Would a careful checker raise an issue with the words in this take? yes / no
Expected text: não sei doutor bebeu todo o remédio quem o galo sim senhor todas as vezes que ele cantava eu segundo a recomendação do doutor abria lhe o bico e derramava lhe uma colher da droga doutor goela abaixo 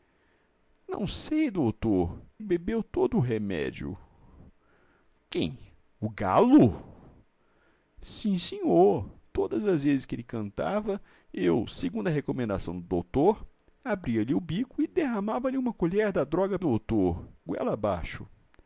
no